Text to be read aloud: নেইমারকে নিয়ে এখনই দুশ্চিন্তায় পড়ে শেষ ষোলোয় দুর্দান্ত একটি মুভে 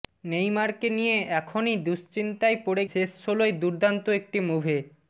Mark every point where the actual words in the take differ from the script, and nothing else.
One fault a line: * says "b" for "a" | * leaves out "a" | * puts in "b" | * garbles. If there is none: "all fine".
all fine